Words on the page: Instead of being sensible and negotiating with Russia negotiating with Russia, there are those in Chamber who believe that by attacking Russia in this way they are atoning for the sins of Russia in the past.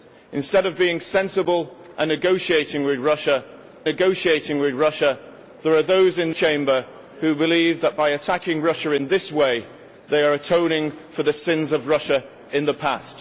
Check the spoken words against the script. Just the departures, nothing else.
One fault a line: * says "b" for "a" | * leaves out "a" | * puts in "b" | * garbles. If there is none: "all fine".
all fine